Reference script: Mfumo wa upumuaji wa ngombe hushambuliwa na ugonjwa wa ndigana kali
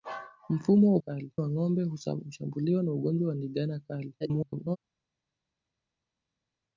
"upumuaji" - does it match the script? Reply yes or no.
no